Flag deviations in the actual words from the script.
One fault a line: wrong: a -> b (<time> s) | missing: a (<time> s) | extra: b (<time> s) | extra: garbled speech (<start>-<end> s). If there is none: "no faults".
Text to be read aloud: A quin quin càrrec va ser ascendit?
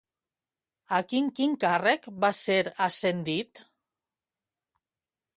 no faults